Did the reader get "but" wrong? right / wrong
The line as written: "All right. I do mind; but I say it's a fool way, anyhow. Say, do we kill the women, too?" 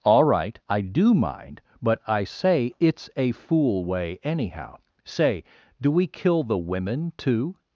right